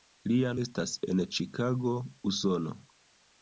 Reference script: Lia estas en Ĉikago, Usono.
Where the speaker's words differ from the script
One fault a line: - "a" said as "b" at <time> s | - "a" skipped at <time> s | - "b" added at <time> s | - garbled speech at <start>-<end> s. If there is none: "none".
none